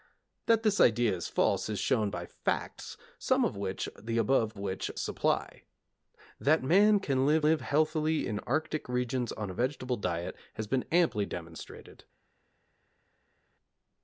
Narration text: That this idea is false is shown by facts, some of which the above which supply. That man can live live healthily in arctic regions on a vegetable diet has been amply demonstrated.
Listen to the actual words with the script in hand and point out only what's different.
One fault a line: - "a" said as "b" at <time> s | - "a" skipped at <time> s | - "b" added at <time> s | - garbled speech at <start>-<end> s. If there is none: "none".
none